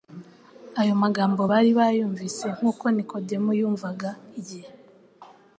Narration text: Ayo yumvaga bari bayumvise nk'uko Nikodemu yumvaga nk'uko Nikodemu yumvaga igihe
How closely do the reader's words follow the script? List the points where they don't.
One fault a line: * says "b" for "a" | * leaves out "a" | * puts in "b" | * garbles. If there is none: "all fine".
* says "magambo" for "yumvaga"
* leaves out "nk'uko Nikodemu yumvaga"